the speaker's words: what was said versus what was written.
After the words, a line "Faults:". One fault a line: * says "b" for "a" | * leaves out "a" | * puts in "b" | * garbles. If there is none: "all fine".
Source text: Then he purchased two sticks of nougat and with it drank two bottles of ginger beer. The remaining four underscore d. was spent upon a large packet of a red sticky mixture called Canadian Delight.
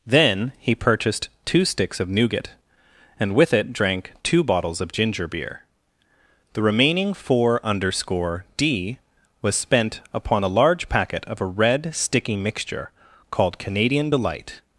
Then he purchased two sticks of nougat and with it drank two bottles of ginger beer. The remaining four underscore d. was spent upon a large packet of a red sticky mixture called Canadian Delight.
Faults:
all fine